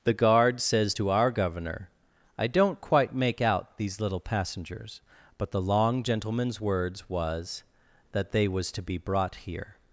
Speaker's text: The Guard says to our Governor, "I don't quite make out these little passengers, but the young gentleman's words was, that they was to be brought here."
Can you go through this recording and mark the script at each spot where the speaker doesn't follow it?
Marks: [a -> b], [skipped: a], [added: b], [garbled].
The Guard says to our Governor, "I don't quite make out these little passengers, but the [young -> long] gentleman's words was, that they was to be brought here."